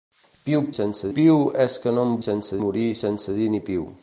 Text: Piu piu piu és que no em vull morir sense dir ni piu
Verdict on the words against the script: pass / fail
fail